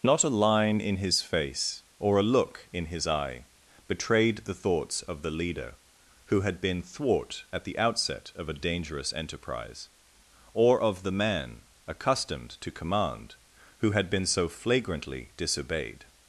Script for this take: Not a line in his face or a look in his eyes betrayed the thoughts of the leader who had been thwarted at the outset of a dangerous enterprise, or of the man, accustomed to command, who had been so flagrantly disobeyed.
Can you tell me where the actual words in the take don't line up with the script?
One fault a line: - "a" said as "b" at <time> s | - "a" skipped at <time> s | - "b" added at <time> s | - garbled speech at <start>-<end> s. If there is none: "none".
- "eyes" said as "eye" at 3.0 s
- "thwarted" said as "thwart" at 6.8 s